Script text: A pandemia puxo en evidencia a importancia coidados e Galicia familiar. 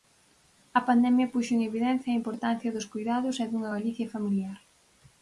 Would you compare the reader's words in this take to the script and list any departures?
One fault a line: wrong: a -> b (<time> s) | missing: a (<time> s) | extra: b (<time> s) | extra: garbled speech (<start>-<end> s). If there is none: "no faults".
extra: dos (2.7 s)
extra: dunha (3.5 s)